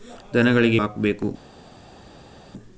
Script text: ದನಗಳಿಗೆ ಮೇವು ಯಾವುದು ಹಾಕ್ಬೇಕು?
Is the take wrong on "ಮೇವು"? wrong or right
wrong